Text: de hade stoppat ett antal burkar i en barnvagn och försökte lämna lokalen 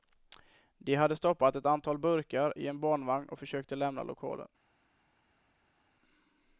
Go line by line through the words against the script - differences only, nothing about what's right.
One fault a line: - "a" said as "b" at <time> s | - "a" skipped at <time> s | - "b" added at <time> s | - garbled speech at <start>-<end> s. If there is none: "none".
none